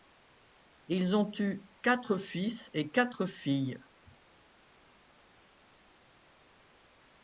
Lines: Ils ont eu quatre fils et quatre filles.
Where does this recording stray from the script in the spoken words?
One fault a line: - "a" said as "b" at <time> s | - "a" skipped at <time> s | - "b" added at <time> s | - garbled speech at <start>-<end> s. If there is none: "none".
none